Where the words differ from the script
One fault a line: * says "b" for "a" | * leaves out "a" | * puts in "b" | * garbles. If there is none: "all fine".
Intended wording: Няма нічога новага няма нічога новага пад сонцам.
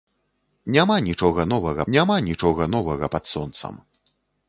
all fine